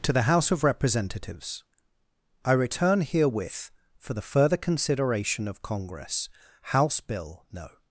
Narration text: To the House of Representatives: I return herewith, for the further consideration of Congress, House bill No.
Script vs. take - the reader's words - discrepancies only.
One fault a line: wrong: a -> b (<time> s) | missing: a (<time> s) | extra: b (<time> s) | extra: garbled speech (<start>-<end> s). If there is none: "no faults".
no faults